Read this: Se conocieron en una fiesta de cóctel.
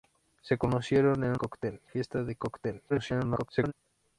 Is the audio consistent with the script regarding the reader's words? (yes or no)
no